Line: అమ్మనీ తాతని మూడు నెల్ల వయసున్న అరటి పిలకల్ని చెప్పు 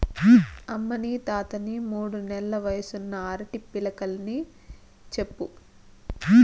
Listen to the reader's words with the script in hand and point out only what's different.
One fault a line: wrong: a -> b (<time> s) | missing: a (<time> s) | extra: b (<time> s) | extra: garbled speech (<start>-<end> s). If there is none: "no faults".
no faults